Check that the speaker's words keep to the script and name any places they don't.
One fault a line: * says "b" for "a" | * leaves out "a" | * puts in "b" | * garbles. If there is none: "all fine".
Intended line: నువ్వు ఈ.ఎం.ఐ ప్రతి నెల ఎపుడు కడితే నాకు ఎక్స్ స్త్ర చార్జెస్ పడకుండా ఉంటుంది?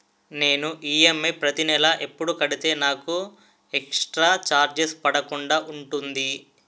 * says "నేను" for "నువ్వు"